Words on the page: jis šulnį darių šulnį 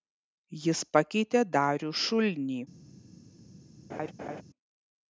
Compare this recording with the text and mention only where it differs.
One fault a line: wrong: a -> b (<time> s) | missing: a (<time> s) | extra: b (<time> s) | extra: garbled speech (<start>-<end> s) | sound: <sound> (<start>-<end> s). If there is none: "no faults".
wrong: šulnį -> pakeitė (0.9 s)
sound: laugh (3.9-4.4 s)